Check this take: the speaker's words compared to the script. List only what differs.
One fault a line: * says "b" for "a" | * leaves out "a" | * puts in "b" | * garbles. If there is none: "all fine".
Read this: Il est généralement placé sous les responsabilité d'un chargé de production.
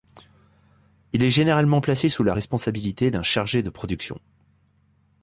* says "la" for "les"